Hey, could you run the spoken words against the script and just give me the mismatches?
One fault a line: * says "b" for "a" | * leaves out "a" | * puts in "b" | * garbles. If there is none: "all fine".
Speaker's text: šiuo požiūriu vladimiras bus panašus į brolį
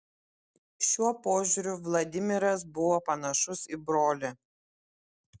* says "buvo" for "bus"